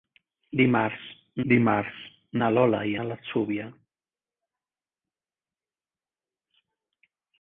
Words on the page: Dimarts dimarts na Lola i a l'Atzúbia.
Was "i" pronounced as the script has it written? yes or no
yes